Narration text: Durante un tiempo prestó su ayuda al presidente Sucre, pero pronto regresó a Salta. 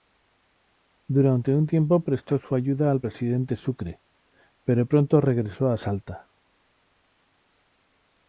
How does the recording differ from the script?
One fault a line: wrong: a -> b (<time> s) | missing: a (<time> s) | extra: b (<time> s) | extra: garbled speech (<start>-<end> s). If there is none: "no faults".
no faults